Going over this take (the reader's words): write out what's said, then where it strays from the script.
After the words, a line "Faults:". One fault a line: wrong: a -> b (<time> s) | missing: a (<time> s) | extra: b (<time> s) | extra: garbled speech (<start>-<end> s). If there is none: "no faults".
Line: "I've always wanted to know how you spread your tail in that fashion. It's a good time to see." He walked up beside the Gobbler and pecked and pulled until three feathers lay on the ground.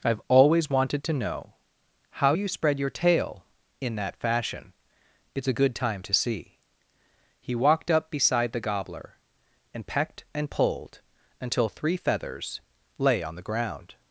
"I've always wanted to know how you spread your tail in that fashion. It's a good time to see." He walked up beside the Gobbler and pecked and pulled until three feathers lay on the ground.
Faults:
no faults